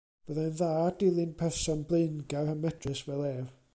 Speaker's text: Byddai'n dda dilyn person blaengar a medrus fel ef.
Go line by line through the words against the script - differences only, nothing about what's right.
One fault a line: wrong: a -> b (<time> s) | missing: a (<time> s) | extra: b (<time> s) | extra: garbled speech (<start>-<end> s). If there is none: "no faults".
no faults